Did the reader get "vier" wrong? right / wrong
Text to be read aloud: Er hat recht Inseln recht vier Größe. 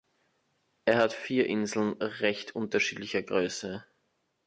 wrong